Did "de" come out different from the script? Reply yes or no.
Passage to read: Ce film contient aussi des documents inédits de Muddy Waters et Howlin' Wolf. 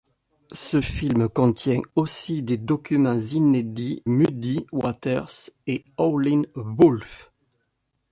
yes